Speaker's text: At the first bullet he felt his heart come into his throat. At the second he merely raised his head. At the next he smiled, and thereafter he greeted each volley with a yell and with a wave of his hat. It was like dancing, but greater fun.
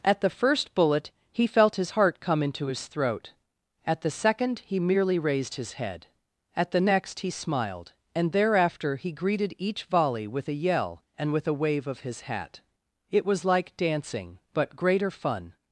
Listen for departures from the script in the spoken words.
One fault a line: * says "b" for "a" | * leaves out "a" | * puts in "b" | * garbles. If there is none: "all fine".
all fine